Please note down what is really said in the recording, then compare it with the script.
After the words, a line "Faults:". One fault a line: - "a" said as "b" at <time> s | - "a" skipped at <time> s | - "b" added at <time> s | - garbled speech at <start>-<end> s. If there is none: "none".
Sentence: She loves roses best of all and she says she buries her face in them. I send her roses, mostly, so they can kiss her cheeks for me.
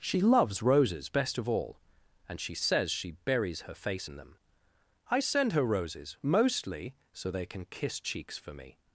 She loves roses best of all and she says she buries her face in them. I send her roses, mostly, so they can kiss cheeks for me.
Faults:
- "her" skipped at 8.0 s